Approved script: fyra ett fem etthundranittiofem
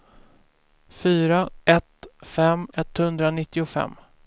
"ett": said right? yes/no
yes